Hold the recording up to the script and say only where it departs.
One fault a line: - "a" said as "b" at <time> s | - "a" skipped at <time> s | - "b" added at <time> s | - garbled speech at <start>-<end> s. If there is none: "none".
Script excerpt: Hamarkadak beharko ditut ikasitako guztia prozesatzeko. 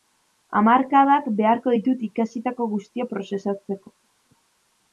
none